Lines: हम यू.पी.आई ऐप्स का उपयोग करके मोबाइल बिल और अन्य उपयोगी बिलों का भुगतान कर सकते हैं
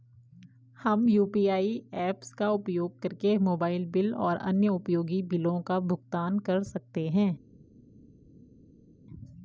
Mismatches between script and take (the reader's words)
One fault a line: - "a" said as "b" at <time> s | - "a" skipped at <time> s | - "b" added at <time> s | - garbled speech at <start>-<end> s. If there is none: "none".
none